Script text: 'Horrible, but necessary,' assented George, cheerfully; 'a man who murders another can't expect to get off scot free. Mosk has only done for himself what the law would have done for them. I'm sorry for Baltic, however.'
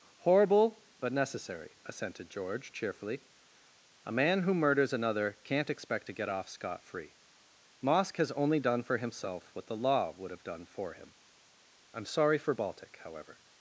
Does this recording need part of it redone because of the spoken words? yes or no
yes